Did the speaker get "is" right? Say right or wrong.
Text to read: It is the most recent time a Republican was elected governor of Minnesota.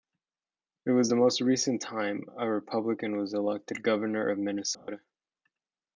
wrong